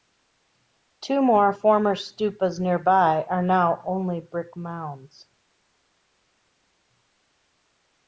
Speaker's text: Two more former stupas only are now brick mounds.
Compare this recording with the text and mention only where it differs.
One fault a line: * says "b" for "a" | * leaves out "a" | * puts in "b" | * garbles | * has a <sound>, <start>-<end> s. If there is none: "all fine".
* says "nearby" for "only"
* puts in "only"